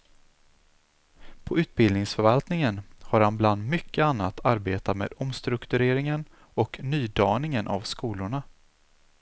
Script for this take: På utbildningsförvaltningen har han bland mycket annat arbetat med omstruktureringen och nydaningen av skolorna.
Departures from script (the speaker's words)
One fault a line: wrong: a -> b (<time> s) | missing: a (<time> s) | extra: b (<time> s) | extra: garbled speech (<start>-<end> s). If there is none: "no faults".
no faults